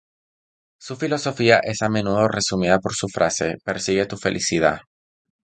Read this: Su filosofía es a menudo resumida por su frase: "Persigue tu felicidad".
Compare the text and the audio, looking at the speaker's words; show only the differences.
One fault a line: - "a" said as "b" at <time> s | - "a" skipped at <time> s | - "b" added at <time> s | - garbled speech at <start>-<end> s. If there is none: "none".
none